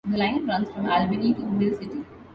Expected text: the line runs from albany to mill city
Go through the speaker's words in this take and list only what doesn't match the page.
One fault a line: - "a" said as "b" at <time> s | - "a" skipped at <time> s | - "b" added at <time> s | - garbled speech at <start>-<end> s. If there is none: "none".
none